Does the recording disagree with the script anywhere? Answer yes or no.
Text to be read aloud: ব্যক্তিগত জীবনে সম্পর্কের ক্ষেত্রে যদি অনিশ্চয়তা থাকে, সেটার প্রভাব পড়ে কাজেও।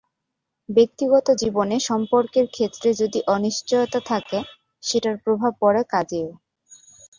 no